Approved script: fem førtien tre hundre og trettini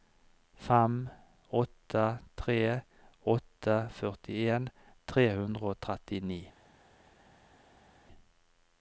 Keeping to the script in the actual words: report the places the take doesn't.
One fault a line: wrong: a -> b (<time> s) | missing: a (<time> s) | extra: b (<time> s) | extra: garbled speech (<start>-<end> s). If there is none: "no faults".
extra: åtte tre åtte (1.6 s)